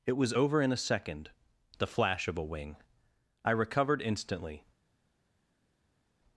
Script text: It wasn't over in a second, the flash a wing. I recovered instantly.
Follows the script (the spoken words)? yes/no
no